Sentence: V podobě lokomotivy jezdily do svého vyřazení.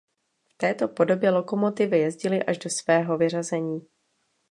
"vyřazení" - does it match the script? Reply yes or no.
yes